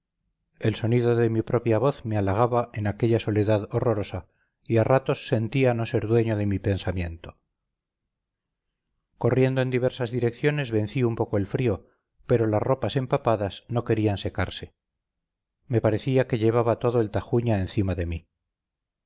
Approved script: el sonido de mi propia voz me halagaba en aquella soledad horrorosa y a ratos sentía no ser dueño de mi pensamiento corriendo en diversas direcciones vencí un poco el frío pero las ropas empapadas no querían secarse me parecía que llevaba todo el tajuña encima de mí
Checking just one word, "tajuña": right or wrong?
right